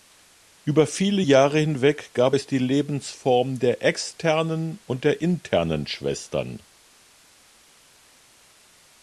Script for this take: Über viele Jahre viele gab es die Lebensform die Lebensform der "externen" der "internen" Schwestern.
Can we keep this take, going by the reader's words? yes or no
no